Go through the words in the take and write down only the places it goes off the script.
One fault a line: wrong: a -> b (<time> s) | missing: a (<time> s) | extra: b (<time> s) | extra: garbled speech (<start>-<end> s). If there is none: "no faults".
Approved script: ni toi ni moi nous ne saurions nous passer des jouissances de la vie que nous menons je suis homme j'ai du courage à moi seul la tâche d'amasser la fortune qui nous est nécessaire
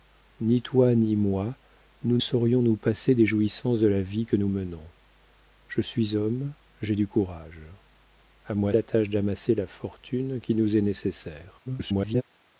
missing: ne (2.2 s)
missing: seul (8.7 s)
extra: garbled speech (11.7-12.2 s)